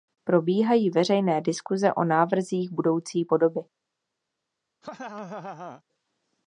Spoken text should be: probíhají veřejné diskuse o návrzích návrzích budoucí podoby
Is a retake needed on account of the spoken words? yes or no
yes